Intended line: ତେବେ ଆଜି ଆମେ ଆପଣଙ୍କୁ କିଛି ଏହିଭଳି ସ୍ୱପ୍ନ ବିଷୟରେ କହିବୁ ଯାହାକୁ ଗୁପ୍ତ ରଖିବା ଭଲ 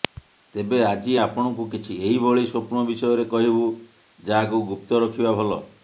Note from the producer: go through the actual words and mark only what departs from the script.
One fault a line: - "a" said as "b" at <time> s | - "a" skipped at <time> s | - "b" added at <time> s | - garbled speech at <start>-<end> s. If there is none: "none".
- "ଆମେ" skipped at 1.1 s